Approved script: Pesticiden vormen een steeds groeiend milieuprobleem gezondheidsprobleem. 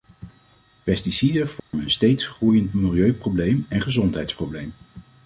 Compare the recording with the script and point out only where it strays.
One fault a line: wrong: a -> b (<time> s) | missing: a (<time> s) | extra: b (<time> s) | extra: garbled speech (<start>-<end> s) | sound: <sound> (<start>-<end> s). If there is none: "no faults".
sound: dropout (1.6-1.7 s)
extra: en (3.7 s)